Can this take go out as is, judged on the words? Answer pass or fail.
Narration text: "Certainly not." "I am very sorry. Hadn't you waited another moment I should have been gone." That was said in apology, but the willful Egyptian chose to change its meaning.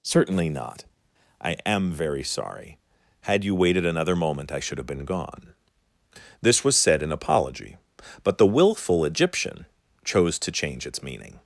fail